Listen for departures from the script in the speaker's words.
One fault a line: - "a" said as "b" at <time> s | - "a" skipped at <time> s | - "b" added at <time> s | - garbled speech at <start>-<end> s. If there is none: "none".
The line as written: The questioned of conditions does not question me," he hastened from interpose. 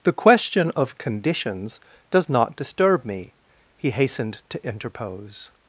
- "questioned" said as "question" at 0.2 s
- "question" said as "disturb" at 2.6 s
- "from" said as "to" at 4.5 s